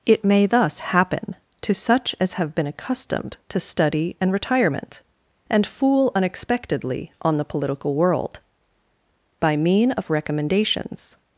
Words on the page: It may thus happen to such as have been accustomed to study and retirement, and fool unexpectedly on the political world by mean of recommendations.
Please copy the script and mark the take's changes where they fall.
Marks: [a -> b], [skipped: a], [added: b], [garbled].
It may thus happen to such as have been accustomed to study and retirement, and fool unexpectedly on the political world by mean of recommendations.